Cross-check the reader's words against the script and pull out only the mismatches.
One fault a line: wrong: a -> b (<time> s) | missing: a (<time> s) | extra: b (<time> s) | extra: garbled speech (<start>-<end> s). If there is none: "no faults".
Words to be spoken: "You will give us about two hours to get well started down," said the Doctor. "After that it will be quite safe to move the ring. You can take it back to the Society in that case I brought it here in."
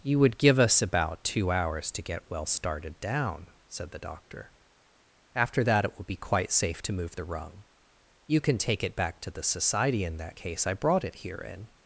wrong: will -> would (0.2 s)
wrong: ring -> rung (7.2 s)